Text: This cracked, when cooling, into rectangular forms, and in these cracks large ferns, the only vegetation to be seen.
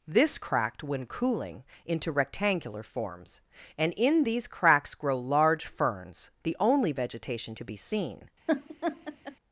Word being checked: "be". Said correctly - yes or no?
yes